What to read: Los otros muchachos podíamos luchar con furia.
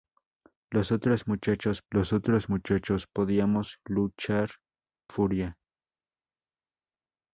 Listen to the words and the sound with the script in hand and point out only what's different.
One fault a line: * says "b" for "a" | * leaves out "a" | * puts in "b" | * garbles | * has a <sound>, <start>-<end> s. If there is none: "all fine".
* puts in "los otros muchachos"
* leaves out "con"